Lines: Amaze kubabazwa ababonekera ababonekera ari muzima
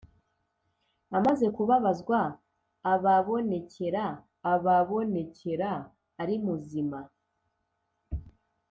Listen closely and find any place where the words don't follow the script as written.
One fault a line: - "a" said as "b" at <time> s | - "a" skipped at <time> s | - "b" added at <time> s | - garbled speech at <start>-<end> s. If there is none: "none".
none